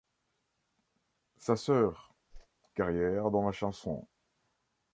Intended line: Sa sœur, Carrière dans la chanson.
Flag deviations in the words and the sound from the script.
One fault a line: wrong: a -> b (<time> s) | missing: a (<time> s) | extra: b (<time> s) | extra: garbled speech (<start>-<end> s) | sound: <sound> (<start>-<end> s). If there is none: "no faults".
sound: whoosh (2.3-2.5 s)